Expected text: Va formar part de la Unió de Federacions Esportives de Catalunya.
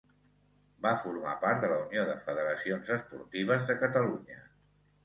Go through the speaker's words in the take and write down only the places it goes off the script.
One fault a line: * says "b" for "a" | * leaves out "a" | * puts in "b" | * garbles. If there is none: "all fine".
all fine